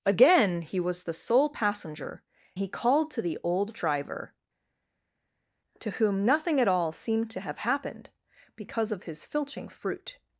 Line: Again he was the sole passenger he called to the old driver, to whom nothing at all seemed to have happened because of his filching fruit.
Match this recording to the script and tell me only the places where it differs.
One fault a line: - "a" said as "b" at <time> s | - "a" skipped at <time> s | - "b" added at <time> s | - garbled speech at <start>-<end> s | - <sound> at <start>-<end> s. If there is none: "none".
none